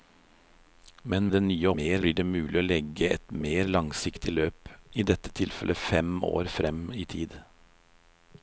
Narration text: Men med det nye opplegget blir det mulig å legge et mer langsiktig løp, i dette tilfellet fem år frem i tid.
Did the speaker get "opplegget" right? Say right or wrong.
wrong